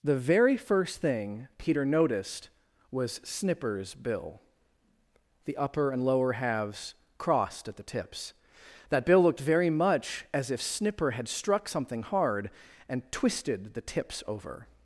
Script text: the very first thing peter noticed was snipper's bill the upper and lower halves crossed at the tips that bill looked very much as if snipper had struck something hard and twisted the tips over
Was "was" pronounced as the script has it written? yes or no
yes